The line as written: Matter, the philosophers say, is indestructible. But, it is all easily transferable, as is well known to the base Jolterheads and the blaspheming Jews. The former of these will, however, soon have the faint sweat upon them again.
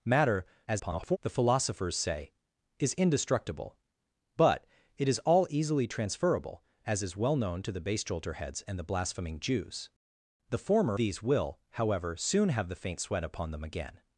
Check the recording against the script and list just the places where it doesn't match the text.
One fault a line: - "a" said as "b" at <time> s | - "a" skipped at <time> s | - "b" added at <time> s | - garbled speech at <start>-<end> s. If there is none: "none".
- garbled speech at 0.7-1.2 s
- "of" skipped at 11.0 s